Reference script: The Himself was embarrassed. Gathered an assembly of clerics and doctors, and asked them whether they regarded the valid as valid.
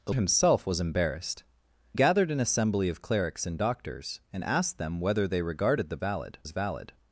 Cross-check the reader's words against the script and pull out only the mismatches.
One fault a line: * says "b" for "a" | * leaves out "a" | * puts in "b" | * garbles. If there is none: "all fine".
all fine